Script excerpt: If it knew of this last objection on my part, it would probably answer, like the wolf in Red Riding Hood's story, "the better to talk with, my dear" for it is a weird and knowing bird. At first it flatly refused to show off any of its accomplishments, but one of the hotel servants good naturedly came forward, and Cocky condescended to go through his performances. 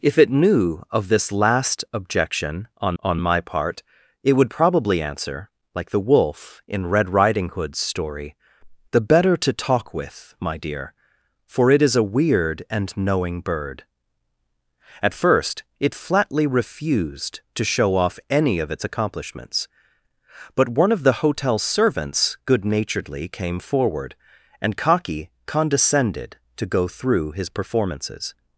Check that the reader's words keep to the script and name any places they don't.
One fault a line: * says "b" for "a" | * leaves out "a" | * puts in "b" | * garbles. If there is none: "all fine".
* puts in "on"